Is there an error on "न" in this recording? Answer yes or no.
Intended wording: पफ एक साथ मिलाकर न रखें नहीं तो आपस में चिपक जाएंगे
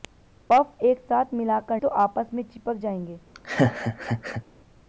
yes